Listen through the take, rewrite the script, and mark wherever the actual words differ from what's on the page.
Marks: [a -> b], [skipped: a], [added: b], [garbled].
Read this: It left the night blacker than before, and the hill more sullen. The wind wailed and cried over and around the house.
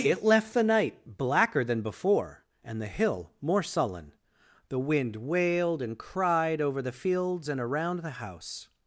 It left the night blacker than before, and the hill more sullen. The wind wailed and cried over [added: the fields] and around the house.